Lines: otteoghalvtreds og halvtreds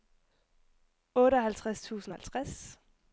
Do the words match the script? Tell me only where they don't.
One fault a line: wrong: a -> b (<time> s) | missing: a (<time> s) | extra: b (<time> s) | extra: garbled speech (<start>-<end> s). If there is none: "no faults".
extra: tusind (1.8 s)